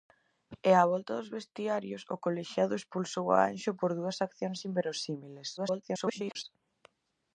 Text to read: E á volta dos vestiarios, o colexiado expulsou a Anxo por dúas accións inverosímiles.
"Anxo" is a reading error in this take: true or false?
false